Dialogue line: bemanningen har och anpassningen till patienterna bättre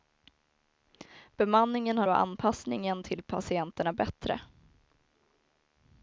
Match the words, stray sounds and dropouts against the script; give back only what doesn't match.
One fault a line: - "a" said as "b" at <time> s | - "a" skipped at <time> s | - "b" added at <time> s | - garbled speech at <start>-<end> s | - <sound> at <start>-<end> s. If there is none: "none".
none